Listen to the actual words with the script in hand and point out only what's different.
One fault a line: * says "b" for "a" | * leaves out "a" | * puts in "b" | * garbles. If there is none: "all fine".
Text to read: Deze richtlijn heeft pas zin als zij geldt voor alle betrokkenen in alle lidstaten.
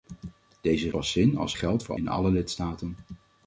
* leaves out "richtlijn heeft"
* leaves out "zij"
* leaves out "alle betrokkenen"